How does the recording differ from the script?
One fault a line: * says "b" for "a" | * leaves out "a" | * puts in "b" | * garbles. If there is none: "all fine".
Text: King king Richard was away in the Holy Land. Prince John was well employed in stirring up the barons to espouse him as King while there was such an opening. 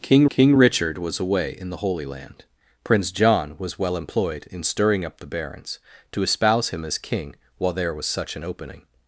all fine